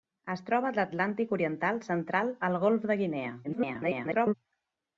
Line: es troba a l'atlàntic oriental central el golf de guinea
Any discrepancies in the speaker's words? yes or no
yes